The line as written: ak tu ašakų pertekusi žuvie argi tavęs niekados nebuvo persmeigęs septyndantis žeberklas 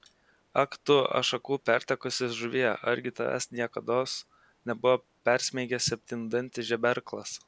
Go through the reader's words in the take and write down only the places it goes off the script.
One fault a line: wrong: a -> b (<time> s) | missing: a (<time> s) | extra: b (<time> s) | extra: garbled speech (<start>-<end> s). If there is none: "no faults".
no faults